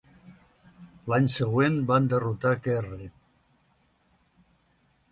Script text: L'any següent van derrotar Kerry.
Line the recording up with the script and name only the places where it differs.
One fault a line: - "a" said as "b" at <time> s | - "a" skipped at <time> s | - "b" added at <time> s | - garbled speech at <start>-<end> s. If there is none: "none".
none